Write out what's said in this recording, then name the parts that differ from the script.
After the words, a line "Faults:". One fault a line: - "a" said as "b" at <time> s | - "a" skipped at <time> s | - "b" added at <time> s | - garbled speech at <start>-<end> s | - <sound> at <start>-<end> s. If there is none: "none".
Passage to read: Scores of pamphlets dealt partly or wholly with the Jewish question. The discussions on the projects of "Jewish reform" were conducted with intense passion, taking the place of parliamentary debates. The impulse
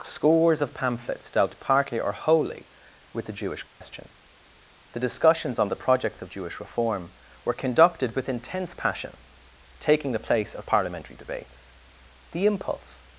Scores of pamphlets dealt partly or wholly with the Jewish question. The discussions on the projects of "Jewish reform" were conducted with intense passion, taking the place of parliamentary debates. The impulse
Faults:
- dropout at 3.7-3.8 s